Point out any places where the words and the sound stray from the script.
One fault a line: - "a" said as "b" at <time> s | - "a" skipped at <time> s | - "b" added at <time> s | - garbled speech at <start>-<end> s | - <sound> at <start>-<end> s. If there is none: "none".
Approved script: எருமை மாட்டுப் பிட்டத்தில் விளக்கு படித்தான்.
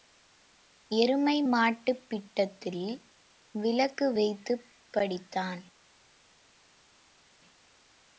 - "வைத்துப்" added at 4.1 s